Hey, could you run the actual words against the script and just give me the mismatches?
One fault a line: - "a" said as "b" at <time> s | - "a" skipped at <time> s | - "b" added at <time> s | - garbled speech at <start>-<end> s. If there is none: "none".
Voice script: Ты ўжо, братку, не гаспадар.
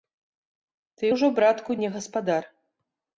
none